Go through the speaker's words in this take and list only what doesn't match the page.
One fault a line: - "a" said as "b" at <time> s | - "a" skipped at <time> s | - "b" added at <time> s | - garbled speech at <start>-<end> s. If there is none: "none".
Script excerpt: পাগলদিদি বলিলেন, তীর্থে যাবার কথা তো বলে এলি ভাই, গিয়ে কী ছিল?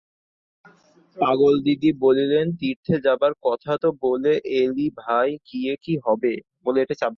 - "ছিল" said as "হবে" at 6.0 s